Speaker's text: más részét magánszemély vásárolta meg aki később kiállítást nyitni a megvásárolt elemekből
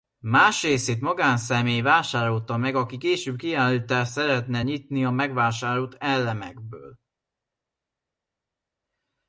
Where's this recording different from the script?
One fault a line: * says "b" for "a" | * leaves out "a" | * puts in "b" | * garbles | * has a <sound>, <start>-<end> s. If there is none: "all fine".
* puts in "szeretne"